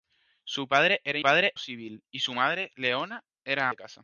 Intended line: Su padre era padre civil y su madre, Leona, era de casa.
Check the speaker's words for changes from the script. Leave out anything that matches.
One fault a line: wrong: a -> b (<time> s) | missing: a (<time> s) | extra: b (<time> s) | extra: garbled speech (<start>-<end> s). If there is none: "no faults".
no faults